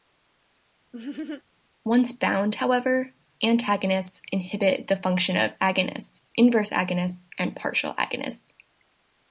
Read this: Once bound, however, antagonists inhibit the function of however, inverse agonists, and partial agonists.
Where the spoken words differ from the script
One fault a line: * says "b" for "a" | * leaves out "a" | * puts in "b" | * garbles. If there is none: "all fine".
* says "agonists" for "however"